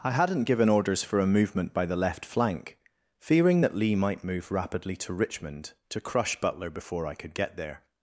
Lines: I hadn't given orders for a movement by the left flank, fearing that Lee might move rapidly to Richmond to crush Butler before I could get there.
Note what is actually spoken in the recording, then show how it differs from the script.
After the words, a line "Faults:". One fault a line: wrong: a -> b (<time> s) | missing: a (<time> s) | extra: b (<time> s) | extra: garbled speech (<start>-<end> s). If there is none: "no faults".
I hadn't given orders for a movement by the left flank, fearing that Lee might move rapidly to Richmond to crush Butler before I could get there.
Faults:
no faults